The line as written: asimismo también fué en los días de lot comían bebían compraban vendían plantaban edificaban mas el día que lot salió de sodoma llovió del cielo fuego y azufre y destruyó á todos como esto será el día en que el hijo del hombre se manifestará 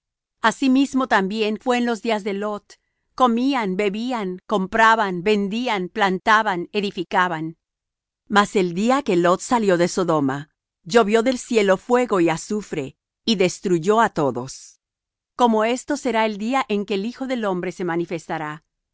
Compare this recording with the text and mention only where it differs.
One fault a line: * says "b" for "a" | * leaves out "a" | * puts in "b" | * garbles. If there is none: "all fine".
all fine